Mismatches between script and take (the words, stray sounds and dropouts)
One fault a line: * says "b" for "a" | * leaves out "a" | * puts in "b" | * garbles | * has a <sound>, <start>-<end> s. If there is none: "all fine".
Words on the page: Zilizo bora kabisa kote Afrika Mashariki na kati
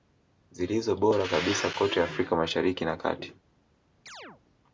* has a chirp, 4.1-4.4 s